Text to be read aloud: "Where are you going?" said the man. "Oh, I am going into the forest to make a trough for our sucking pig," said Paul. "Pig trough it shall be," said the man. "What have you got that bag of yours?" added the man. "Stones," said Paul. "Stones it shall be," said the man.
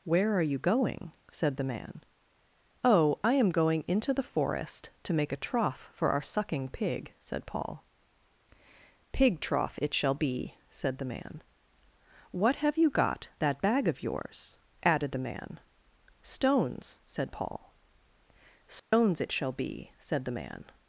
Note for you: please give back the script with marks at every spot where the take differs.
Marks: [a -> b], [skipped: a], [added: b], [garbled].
"Where are you going?" said the man. "Oh, I am going into the forest to make a trough for our sucking pig," said Paul. "Pig trough it shall be," said the man. "What have you got that bag of yours?" added the man. "Stones," said Paul. "Stones it shall be," said the man.